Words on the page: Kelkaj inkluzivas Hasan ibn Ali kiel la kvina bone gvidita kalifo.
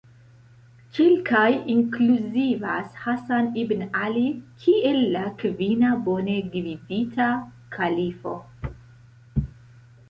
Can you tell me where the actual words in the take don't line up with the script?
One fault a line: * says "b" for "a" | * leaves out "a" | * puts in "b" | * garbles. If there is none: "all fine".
all fine